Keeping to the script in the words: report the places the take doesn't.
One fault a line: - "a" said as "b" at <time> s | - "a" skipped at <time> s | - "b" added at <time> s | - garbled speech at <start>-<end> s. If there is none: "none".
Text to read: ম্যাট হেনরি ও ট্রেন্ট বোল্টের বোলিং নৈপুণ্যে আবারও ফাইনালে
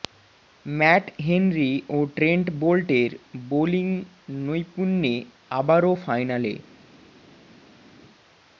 none